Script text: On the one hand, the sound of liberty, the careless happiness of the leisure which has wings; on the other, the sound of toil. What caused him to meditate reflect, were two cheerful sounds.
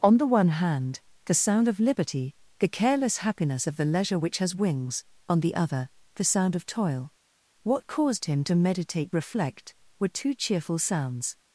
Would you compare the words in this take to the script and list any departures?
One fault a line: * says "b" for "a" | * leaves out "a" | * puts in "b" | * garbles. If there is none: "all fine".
all fine